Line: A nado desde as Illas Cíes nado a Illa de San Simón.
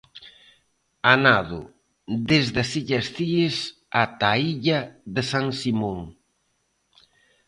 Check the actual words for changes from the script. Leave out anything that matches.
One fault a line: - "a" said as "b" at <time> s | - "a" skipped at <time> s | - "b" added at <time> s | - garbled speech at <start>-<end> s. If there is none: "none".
- "nado" said as "ata" at 4.0 s